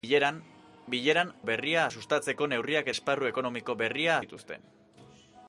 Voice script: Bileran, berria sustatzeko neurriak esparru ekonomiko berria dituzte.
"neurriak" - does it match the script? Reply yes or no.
yes